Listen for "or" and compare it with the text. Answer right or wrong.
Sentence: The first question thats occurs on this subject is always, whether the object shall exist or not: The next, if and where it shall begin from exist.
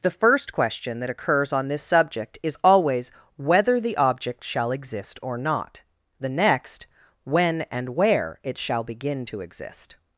right